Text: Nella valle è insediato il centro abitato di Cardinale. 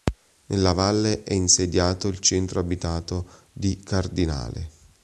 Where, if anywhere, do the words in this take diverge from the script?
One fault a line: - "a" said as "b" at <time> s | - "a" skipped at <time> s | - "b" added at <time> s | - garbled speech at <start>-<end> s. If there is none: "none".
none